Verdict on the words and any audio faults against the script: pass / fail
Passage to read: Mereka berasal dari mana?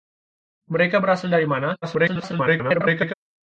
fail